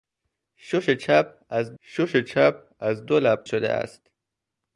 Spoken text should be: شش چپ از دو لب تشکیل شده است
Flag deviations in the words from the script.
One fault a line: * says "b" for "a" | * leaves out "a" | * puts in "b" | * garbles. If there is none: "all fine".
* puts in "شش چپ از"
* leaves out "تشکیل"